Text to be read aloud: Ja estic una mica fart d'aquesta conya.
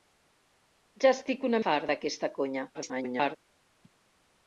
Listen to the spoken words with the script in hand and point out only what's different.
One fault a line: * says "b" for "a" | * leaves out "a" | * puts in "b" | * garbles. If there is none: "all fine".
* leaves out "mica"
* garbles